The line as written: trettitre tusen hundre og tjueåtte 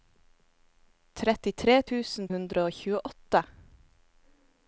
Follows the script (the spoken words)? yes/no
yes